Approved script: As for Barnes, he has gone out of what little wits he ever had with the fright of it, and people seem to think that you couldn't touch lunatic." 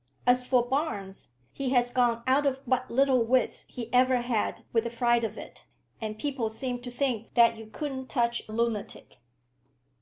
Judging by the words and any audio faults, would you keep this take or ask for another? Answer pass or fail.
pass